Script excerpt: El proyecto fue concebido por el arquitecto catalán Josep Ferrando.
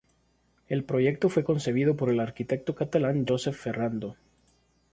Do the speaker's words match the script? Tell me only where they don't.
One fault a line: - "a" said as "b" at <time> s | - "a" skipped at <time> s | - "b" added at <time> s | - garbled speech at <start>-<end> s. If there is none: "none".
none